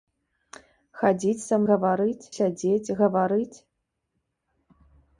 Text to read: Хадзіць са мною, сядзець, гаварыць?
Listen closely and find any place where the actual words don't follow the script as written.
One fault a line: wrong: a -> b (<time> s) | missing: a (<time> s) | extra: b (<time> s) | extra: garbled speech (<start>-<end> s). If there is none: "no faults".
wrong: мною -> гаварыць (1.7 s)